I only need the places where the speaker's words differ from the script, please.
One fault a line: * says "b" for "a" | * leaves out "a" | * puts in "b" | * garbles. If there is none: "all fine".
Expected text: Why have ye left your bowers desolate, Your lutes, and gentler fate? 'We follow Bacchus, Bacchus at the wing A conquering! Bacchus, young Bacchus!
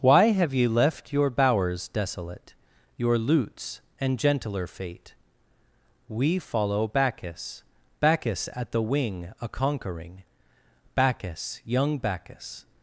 all fine